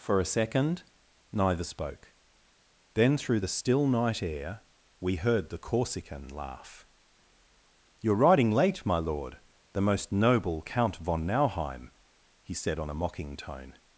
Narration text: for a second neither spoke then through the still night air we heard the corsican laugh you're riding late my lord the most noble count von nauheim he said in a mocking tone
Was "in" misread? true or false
true